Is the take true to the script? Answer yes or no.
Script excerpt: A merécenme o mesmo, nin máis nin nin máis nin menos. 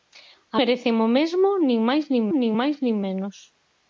yes